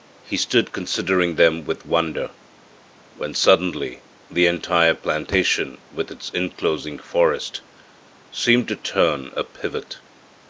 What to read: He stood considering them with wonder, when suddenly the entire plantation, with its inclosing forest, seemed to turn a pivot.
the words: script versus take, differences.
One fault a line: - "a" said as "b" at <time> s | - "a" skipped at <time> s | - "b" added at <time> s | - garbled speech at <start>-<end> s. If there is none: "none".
none